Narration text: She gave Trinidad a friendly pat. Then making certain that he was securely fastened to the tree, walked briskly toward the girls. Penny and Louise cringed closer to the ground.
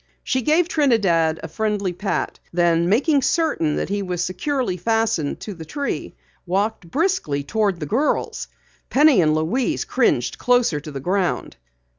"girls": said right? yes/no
yes